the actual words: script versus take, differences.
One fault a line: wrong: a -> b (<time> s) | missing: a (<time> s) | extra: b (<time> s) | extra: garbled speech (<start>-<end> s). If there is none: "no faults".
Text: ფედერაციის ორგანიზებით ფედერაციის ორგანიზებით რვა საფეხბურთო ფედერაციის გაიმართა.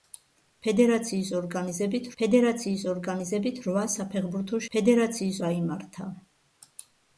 no faults